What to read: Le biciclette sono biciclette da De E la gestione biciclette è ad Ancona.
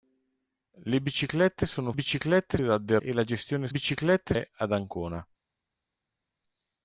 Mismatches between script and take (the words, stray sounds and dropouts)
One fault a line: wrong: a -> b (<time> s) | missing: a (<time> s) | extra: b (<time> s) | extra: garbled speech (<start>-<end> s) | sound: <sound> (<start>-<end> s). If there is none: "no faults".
no faults